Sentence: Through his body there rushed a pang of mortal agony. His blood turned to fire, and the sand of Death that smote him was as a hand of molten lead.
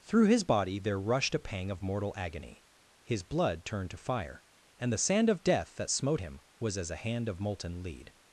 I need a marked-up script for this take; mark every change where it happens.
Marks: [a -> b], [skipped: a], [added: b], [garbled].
Through his body there rushed a pang of mortal agony. His blood turned to fire, and the sand of Death that smote him was as a hand of molten lead.